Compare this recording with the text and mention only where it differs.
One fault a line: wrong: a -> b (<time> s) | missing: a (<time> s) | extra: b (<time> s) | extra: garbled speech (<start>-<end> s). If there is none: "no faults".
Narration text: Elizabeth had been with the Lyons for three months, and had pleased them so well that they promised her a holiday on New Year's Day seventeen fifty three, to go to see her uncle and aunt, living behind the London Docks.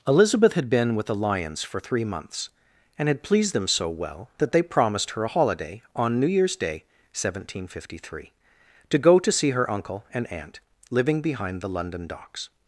no faults